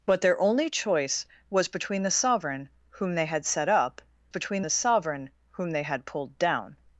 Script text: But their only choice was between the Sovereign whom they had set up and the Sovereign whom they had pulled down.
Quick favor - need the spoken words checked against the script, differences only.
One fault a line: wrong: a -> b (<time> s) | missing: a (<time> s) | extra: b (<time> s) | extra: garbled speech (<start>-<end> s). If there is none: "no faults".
wrong: and -> between (4.3 s)